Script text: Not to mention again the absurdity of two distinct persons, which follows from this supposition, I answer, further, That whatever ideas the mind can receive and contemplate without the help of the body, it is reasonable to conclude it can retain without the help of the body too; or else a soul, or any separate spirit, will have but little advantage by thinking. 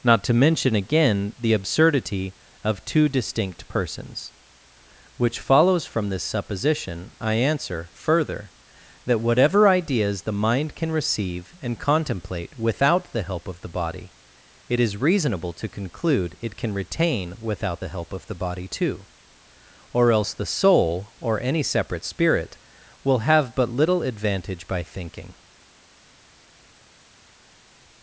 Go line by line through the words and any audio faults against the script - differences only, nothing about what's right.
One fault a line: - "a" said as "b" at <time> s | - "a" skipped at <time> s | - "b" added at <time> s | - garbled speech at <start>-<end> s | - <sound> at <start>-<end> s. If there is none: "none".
- "a" said as "the" at 20.3 s